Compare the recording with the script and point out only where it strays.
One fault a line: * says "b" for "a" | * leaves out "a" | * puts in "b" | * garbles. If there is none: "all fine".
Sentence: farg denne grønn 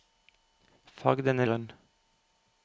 all fine